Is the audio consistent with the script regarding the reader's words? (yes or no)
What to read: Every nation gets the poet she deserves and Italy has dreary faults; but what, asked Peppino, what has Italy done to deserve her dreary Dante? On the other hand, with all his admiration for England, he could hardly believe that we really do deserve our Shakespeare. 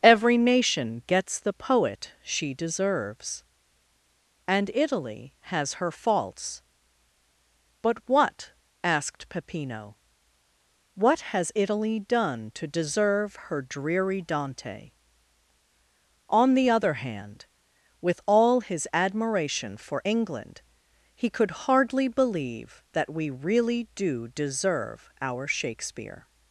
no